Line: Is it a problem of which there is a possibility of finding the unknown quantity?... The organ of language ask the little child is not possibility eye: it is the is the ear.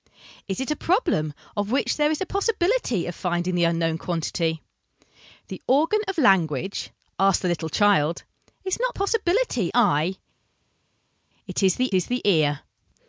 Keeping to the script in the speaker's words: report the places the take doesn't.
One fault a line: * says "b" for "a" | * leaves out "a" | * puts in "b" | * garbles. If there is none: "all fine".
all fine